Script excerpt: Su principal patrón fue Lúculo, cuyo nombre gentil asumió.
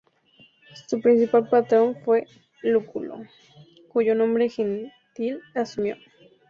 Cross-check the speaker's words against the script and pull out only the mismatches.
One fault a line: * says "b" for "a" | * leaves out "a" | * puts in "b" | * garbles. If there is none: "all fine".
all fine